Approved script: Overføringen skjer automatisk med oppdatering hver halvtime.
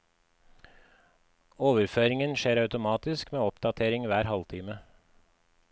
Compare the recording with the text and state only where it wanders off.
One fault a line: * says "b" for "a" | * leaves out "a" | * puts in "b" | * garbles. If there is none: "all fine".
all fine